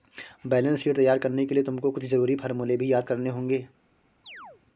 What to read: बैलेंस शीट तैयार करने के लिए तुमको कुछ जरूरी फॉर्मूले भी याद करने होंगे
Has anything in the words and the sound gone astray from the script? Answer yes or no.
yes